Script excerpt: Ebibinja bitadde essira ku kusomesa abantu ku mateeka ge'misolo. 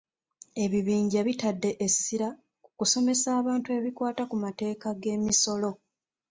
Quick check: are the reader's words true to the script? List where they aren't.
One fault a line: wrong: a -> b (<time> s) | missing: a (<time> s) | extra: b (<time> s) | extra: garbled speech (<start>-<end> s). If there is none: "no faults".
extra: ebikwata (3.8 s)